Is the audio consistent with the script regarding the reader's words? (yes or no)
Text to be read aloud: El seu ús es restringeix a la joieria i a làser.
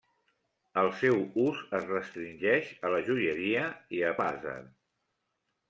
yes